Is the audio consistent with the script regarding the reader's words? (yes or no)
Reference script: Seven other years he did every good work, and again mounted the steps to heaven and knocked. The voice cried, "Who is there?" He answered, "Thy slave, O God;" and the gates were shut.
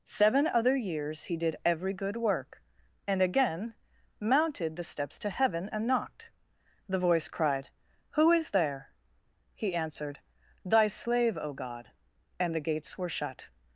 yes